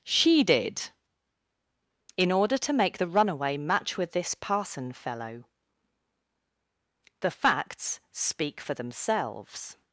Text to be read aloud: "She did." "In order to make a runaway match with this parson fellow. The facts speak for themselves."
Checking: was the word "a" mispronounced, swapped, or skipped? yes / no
yes